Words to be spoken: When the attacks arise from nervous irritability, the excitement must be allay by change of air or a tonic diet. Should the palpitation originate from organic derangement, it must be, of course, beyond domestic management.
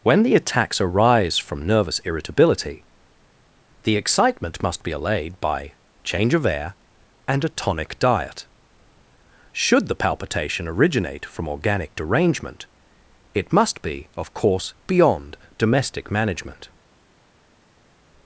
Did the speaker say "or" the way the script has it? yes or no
no